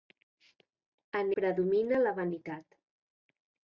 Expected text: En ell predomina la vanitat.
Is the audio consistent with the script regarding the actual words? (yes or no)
no